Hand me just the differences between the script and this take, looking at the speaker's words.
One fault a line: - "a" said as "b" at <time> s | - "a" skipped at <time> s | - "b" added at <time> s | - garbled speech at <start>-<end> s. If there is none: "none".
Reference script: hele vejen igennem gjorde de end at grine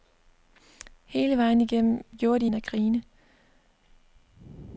none